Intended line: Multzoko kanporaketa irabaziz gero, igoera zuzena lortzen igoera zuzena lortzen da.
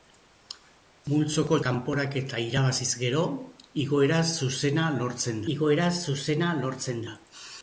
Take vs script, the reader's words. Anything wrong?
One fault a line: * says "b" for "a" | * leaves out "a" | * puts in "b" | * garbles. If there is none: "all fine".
all fine